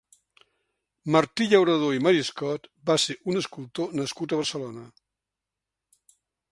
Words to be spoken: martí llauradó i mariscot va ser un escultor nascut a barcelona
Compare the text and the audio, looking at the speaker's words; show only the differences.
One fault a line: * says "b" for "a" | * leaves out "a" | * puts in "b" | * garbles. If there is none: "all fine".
all fine